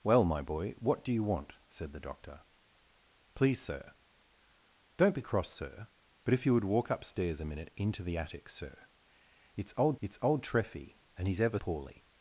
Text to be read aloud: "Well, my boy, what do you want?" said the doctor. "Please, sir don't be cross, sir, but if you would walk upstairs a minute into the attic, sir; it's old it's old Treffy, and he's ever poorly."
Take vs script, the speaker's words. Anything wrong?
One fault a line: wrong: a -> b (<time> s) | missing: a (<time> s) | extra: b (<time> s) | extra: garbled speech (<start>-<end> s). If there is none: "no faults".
no faults